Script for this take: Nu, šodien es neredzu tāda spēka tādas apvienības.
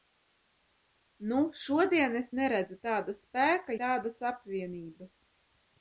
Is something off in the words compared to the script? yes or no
no